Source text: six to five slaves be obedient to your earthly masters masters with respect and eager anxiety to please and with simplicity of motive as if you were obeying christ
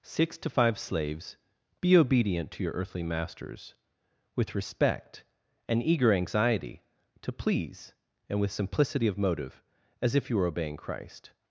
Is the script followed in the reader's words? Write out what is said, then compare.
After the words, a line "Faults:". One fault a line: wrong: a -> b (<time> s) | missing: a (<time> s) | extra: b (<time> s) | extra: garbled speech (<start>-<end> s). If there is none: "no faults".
six to five slaves be obedient to your earthly masters with respect and eager anxiety to please and with simplicity of motive as if you were obeying christ
Faults:
missing: masters (3.8 s)